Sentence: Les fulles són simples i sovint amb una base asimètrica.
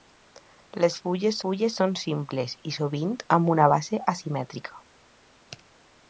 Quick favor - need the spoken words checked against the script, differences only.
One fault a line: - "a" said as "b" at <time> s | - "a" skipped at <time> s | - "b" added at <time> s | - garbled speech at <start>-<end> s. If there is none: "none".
- "fulles" added at 1.5 s